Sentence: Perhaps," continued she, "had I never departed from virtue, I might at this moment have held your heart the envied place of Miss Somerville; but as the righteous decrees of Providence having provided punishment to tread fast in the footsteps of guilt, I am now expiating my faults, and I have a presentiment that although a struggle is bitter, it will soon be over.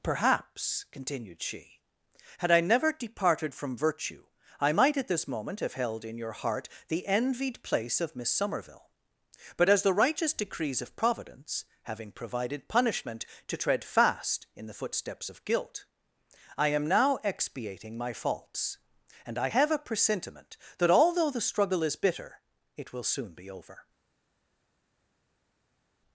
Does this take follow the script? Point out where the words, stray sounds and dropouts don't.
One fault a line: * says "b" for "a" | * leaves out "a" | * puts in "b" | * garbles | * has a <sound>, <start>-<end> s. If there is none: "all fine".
* puts in "in"
* says "the" for "a"